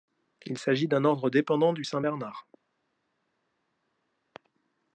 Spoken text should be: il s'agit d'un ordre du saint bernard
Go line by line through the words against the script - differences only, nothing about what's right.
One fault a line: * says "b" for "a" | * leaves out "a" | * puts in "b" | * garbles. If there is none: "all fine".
* puts in "dépendant"